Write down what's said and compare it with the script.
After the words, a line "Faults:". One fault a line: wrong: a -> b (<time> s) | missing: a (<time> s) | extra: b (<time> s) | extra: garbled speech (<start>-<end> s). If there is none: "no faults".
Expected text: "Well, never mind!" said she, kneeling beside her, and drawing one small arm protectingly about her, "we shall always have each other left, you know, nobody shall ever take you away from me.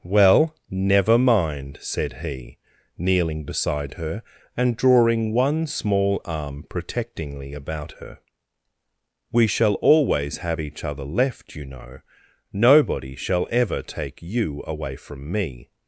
"Well, never mind!" said he, kneeling beside her, and drawing one small arm protectingly about her, "we shall always have each other left, you know, nobody shall ever take you away from me.
Faults:
wrong: she -> he (2.2 s)